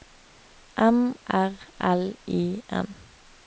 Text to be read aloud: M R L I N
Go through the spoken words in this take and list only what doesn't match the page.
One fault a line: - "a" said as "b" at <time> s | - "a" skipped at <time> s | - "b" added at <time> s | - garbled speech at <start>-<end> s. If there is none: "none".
none